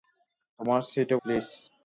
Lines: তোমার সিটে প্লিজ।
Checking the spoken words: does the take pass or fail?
pass